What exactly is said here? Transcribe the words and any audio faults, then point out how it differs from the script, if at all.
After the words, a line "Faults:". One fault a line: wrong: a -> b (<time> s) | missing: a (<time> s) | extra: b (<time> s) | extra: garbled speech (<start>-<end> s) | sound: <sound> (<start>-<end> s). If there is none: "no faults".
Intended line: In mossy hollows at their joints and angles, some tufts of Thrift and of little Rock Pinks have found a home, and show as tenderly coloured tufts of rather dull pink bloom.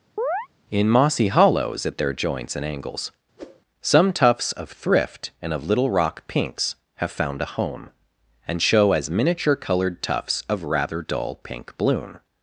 In mossy hollows at their joints and angles, some tufts of Thrift and of little Rock Pinks have found a home, and show as miniature coloured tufts of rather dull pink bloom.
Faults:
sound: chirp (0.2-0.5 s)
sound: whoosh (3.4-3.6 s)
wrong: tenderly -> miniature (9.1 s)